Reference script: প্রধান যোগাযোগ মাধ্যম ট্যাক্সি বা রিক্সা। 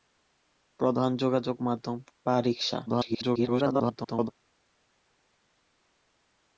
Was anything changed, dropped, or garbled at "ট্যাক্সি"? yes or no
yes